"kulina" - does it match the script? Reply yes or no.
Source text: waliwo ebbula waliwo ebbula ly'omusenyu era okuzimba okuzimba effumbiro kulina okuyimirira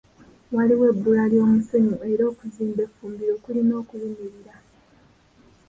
yes